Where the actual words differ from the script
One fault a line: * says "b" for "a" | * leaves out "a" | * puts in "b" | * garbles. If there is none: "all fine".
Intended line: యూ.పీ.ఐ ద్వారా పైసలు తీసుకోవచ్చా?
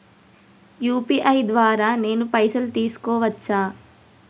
* puts in "నేను"